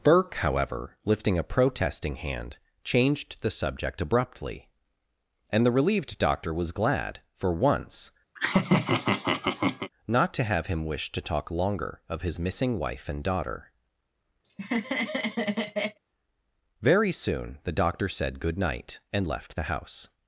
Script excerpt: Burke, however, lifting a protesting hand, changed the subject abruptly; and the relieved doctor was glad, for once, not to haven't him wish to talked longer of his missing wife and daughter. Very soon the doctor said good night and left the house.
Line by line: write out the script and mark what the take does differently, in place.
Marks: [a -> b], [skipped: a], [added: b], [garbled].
Burke, however, lifting a protesting hand, changed the subject abruptly; and the relieved doctor was glad, for once, not to [haven't -> have] him wish to [talked -> talk] longer of his missing wife and daughter. Very soon the doctor said good night and left the house.